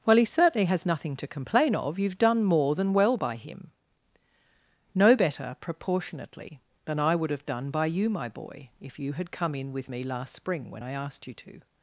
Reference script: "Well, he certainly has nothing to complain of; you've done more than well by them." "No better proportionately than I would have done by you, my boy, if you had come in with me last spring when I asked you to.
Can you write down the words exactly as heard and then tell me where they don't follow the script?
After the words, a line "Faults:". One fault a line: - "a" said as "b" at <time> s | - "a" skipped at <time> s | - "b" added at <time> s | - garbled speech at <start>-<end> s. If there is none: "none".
"Well, he certainly has nothing to complain of; you've done more than well by him." "No better proportionately than I would have done by you, my boy, if you had come in with me last spring when I asked you to.
Faults:
- "them" said as "him" at 3.4 s